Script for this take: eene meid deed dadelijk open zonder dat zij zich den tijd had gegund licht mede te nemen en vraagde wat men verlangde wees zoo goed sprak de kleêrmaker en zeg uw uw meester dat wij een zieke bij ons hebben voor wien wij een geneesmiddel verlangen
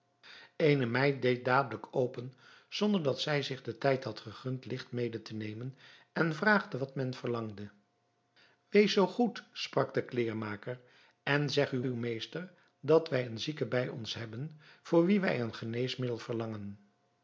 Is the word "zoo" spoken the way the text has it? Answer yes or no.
yes